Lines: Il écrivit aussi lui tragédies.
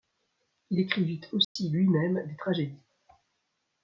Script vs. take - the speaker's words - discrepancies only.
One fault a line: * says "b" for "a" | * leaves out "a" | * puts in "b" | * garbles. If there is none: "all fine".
* puts in "même des"